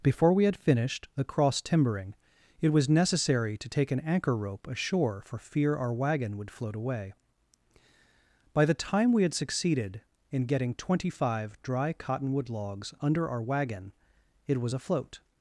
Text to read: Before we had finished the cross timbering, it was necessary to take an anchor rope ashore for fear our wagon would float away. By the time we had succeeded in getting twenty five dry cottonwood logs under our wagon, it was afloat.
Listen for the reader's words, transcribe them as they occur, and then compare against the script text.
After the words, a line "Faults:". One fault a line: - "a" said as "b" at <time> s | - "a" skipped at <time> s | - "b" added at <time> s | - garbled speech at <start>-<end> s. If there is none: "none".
Before we had finished the cross timbering, it was necessary to take an anchor rope ashore for fear our wagon would float away. By the time we had succeeded in getting twenty five dry cottonwood logs under our wagon, it was afloat.
Faults:
none